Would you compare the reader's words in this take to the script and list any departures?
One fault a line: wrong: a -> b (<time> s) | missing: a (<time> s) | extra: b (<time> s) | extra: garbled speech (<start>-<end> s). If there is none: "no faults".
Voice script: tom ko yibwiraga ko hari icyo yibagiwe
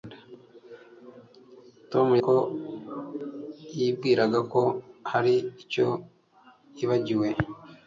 no faults